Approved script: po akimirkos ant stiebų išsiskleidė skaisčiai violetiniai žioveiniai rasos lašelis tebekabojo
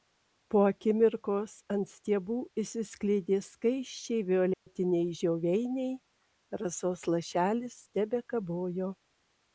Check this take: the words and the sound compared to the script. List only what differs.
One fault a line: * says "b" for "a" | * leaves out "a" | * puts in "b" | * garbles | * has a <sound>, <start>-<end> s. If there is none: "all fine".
* has a dropout, 4.5-4.7 s